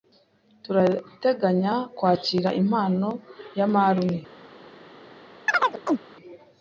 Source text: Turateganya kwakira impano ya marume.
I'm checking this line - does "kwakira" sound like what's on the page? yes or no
yes